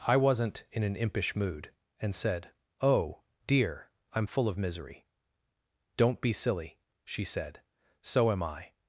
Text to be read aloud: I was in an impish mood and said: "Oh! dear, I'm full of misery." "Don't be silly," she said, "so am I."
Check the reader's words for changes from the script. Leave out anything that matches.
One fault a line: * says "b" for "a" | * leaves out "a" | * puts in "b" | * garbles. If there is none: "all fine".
* says "wasn't" for "was"